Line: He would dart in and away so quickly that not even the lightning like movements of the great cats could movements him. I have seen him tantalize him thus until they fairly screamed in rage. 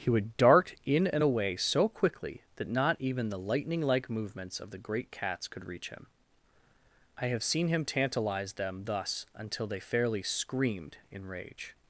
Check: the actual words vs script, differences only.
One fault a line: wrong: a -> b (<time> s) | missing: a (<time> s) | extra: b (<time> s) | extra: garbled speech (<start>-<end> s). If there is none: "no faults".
wrong: movements -> reach (5.7 s)
wrong: him -> them (8.5 s)